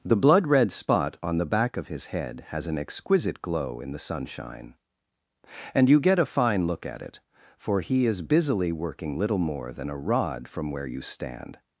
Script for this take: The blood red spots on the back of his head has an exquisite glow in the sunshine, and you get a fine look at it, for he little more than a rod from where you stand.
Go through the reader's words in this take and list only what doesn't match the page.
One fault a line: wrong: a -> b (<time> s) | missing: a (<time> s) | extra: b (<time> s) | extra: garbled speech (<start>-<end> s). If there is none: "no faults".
wrong: spots -> spot (0.7 s)
extra: is busily working (8.1 s)